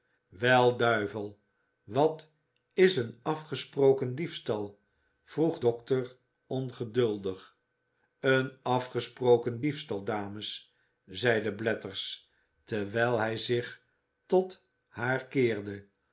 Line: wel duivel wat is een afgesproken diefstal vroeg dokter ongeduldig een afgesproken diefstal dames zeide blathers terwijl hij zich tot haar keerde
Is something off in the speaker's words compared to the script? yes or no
no